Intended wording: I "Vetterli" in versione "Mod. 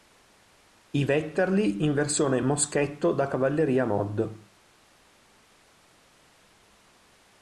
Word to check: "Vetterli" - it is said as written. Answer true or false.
true